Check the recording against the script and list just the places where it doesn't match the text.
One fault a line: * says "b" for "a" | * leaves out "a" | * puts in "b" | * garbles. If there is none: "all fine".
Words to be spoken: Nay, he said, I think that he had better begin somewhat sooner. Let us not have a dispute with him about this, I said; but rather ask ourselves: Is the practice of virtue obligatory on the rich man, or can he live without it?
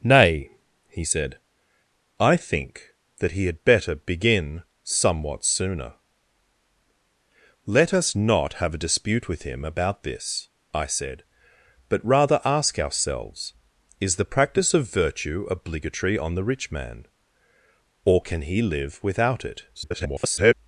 * garbles